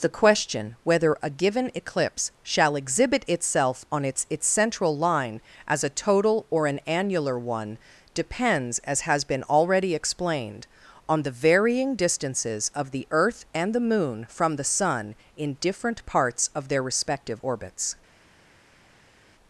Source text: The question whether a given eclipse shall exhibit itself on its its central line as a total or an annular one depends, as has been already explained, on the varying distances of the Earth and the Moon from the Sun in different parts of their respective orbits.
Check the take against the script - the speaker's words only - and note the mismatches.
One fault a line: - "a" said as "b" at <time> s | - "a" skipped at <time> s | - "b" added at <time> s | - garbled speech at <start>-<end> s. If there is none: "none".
none